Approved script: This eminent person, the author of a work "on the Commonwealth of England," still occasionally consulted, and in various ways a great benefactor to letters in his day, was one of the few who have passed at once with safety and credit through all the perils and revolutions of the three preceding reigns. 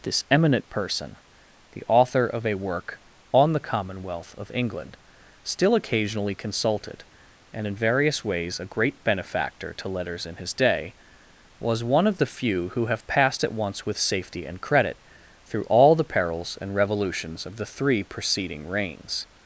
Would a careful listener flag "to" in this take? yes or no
no